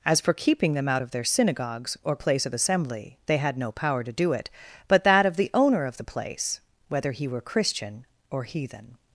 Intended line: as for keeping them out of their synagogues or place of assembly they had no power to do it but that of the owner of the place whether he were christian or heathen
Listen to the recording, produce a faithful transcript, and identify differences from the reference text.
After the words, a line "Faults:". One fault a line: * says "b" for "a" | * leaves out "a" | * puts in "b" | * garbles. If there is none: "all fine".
as for keeping them out of their synagogues or place of assembly they had no power to do it but that of the owner of the place whether he were christian or heathen
Faults:
all fine